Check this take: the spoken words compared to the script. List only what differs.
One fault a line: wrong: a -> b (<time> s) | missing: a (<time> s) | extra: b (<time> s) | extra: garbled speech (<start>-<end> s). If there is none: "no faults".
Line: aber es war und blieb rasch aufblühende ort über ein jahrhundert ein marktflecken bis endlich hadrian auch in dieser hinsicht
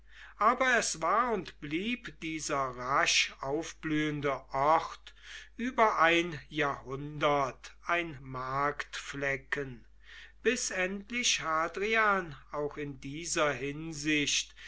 extra: dieser (2.2 s)